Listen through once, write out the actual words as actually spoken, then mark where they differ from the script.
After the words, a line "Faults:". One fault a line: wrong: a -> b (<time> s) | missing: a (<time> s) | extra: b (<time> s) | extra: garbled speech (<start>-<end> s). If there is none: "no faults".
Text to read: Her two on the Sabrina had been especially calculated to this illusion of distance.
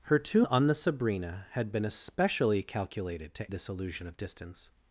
Her two on the Sabrina had been especially calculated to this illusion of distance.
Faults:
no faults